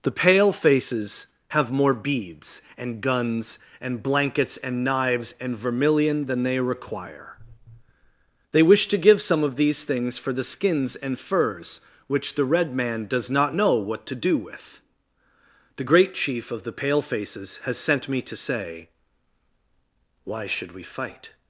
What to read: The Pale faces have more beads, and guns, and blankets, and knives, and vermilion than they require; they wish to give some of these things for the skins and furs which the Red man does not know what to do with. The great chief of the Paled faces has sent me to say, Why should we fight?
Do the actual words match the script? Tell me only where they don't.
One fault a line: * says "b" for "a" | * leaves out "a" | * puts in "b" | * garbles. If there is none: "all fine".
* says "Pale" for "Paled"